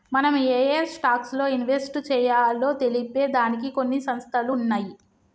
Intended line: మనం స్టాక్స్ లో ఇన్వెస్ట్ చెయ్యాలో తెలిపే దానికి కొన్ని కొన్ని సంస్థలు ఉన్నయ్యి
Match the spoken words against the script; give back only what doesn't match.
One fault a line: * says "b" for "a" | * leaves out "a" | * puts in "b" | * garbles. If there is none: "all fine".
* puts in "ఏయే"
* leaves out "కొన్ని"